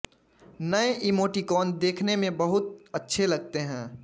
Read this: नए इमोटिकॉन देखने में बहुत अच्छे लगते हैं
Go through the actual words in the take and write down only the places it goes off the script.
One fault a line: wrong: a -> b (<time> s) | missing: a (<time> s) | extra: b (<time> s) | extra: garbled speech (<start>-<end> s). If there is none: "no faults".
no faults